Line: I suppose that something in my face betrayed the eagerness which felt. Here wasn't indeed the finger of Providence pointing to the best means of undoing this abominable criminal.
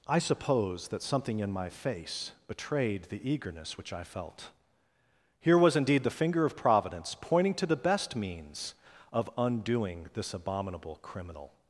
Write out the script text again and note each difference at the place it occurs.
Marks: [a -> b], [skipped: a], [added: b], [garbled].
I suppose that something in my face betrayed the eagerness which [added: I] felt. Here [wasn't -> was] indeed the finger of Providence pointing to the best means of undoing this abominable criminal.